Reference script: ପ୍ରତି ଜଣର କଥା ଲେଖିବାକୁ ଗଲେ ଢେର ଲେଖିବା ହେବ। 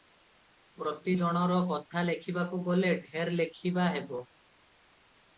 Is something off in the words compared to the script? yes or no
no